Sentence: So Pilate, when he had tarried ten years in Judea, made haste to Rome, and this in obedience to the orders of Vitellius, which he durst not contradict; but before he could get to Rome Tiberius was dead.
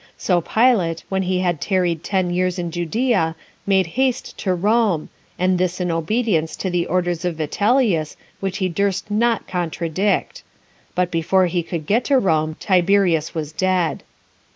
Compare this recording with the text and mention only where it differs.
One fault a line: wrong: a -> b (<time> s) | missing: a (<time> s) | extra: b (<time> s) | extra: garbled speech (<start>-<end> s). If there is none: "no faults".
no faults